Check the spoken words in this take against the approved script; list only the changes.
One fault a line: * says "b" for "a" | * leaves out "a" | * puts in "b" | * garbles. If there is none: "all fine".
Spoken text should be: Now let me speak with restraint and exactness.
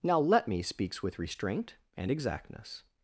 * says "speaks" for "speak"